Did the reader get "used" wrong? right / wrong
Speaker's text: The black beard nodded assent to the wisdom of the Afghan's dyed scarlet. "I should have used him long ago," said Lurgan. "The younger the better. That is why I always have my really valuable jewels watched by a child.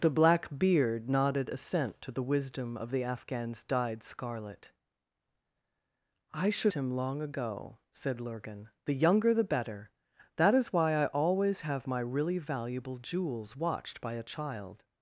wrong